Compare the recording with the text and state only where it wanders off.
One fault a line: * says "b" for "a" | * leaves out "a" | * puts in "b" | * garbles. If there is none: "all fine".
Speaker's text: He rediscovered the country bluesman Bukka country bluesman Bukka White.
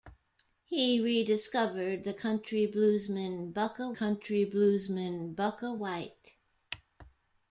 all fine